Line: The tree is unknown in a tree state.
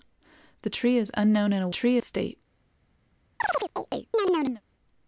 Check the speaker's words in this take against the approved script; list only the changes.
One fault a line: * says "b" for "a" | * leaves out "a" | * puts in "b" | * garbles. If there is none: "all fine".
all fine